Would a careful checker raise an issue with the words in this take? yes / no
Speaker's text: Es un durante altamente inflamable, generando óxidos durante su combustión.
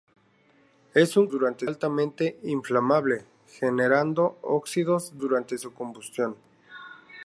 no